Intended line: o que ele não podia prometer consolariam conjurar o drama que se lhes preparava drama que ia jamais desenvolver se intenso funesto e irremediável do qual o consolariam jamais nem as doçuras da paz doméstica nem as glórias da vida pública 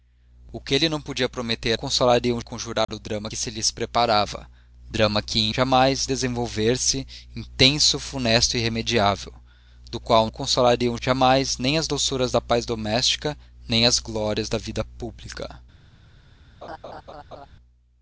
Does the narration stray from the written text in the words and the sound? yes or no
yes